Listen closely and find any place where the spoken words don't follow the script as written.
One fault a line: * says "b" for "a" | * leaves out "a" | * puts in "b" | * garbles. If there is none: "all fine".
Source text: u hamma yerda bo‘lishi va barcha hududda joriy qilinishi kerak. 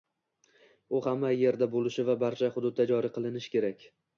all fine